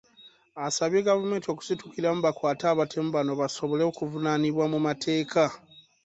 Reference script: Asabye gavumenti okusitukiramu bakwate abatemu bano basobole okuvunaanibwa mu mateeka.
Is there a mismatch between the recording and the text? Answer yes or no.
no